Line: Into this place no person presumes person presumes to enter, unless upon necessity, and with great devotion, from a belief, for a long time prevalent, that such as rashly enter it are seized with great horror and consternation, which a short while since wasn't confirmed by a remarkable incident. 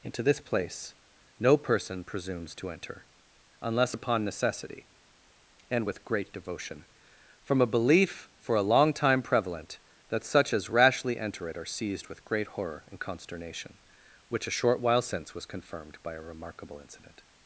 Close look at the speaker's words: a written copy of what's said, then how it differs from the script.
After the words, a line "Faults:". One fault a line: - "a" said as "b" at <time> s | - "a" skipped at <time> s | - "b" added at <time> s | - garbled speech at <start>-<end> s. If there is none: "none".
Into this place no person presumes to enter, unless upon necessity, and with great devotion, from a belief, for a long time prevalent, that such as rashly enter it are seized with great horror and consternation, which a short while since was confirmed by a remarkable incident.
Faults:
- "person presumes" skipped at 2.5 s
- "wasn't" said as "was" at 15.3 s